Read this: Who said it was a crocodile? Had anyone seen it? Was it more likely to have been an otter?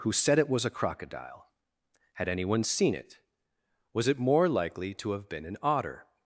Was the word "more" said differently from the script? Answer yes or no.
no